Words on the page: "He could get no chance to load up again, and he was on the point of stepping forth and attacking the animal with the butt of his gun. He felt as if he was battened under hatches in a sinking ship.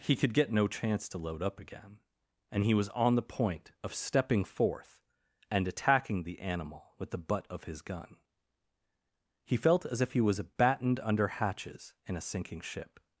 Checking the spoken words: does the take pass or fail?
pass